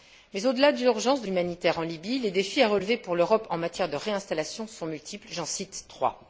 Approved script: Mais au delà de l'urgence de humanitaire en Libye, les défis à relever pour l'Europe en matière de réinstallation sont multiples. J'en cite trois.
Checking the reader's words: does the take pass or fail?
pass